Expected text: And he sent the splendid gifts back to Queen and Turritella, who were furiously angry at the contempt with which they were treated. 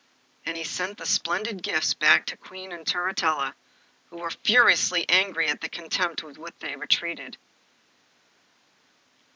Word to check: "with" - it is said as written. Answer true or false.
true